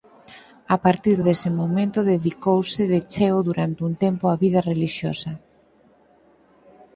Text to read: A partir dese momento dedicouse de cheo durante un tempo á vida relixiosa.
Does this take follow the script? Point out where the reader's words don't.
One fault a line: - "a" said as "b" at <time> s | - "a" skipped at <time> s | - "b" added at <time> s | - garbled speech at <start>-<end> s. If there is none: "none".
none